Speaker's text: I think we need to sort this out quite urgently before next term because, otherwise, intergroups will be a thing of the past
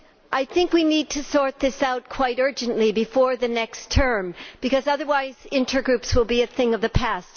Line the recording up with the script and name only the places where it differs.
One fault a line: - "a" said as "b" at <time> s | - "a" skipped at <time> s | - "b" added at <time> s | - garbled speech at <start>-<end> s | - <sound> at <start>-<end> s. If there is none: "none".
- "the" added at 3.4 s